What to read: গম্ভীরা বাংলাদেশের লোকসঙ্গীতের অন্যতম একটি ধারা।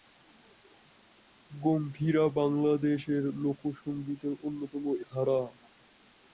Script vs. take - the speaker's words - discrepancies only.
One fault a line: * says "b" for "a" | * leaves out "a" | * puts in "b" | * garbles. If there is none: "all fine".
* leaves out "একটি"